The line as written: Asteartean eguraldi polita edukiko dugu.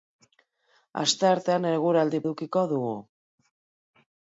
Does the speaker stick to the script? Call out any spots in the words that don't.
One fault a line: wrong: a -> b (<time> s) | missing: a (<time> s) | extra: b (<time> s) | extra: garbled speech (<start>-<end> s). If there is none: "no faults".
missing: polita (2.2 s)